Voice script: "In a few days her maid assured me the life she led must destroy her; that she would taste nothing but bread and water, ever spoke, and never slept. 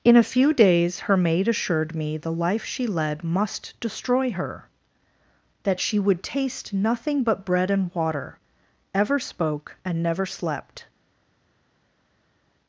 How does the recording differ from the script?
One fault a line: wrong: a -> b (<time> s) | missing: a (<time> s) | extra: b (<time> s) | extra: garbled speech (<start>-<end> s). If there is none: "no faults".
no faults